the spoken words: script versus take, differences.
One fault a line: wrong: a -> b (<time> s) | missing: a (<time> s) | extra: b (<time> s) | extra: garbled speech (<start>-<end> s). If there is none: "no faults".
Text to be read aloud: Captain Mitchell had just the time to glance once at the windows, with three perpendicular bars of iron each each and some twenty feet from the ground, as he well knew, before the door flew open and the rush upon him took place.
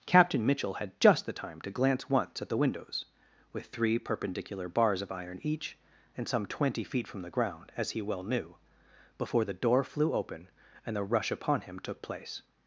missing: each (5.8 s)